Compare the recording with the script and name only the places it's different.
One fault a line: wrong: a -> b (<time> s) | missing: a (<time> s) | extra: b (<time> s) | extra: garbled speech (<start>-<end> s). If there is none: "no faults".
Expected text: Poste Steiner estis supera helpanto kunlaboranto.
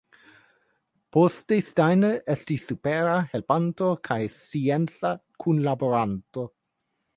extra: kaj scienca (4.1 s)